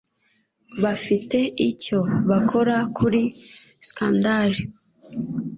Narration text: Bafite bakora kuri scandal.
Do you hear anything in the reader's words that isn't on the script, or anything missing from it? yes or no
yes